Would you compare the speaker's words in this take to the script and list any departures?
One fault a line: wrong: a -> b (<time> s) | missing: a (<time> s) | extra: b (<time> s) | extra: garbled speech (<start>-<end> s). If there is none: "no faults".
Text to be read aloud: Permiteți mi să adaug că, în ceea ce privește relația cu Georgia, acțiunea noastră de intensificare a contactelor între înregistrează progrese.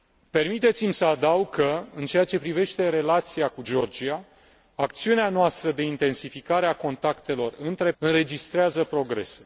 no faults